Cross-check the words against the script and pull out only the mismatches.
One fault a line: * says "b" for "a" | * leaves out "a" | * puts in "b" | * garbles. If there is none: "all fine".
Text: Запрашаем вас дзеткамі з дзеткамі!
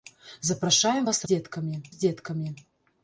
all fine